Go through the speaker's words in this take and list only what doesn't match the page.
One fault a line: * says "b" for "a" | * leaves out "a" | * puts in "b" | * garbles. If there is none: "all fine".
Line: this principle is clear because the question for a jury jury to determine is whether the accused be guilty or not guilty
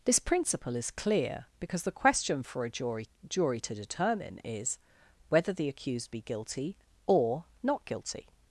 all fine